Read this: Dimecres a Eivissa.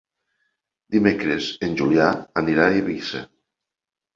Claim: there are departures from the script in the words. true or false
true